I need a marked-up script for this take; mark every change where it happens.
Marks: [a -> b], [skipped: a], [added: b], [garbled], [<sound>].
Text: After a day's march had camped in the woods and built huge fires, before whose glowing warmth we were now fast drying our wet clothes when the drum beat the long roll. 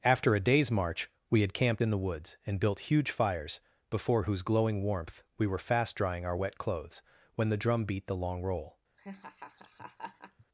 After a day's march [added: we] had camped in the woods and built huge fires, before whose glowing warmth we were [skipped: now] fast drying our wet clothes when the drum beat the long roll. [laugh]